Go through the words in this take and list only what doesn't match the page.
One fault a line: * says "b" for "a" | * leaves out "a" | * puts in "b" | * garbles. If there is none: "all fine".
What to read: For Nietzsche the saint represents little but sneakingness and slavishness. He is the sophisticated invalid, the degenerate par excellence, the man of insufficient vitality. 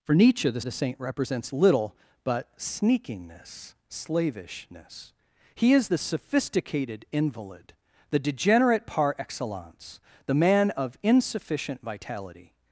* puts in "the"
* leaves out "and"